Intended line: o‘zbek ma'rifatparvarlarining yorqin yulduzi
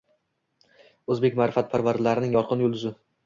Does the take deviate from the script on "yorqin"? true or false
false